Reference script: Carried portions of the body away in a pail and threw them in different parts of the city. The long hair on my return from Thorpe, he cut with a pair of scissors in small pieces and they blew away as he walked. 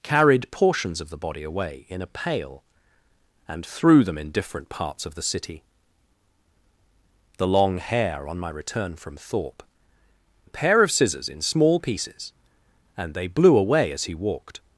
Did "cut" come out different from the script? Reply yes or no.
yes